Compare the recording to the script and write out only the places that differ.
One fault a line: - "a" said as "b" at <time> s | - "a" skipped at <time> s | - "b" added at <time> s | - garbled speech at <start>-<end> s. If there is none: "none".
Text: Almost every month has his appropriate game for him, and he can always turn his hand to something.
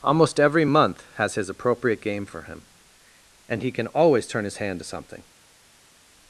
none